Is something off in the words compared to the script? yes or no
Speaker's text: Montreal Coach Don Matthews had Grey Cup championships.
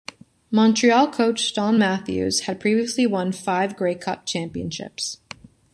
yes